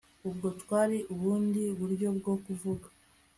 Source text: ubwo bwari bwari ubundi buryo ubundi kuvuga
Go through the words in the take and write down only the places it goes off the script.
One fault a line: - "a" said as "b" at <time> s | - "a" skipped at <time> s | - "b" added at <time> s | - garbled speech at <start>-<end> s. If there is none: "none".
- "bwari" skipped at 1.0 s
- "ubundi" said as "bwo" at 2.2 s